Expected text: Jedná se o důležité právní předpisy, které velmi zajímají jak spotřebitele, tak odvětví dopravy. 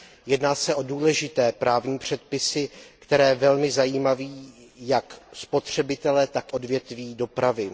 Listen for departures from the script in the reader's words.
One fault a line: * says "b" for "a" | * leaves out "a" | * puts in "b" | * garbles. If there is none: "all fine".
all fine